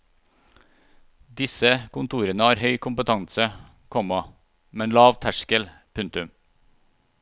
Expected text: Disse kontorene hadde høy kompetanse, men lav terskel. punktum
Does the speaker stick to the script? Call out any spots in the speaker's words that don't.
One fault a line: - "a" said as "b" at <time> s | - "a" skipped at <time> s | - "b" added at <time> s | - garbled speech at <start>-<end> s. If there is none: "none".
- "hadde" said as "har" at 2.5 s
- "komma" added at 4.0 s